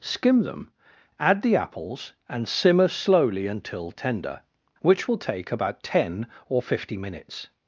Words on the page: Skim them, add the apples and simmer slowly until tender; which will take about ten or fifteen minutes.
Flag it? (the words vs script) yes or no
yes